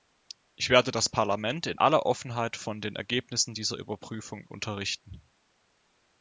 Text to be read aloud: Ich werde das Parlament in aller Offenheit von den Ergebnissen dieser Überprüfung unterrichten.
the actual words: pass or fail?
pass